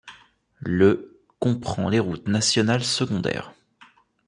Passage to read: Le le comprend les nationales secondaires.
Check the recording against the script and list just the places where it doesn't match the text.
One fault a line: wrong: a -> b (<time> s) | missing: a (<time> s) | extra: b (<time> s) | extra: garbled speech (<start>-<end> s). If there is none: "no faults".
missing: le (1.2 s)
extra: routes (2.0 s)